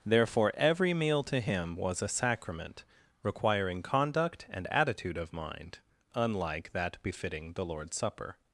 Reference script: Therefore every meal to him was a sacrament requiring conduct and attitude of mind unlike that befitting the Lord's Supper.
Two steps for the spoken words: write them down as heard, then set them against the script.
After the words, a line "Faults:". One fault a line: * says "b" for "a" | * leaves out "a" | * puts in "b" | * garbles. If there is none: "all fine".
Therefore every meal to him was a sacrament requiring conduct and attitude of mind unlike that befitting the Lord's Supper.
Faults:
all fine